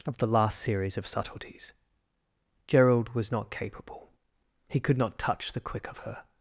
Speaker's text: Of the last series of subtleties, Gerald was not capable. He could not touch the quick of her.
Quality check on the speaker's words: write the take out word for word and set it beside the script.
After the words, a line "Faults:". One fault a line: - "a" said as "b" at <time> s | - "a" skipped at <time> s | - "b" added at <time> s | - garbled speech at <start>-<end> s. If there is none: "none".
Of the last series of subtleties, Gerald was not capable. He could not touch the quick of her.
Faults:
none